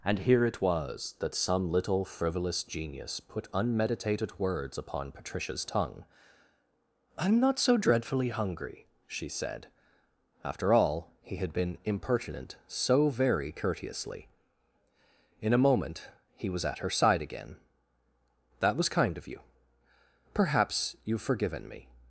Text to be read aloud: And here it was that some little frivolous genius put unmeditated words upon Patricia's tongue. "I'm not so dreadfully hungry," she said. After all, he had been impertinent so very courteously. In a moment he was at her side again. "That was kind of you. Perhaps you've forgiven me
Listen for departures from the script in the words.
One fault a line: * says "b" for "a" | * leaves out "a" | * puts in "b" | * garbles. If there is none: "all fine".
all fine